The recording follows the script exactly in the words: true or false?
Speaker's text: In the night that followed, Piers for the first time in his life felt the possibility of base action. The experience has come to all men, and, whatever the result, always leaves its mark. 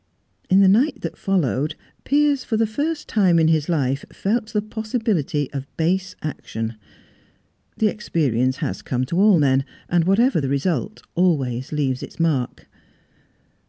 true